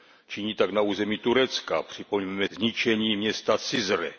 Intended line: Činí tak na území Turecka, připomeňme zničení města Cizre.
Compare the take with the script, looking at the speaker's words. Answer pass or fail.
pass